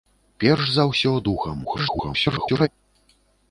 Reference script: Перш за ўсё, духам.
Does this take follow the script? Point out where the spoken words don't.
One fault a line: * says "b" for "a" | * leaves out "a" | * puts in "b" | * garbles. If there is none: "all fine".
* garbles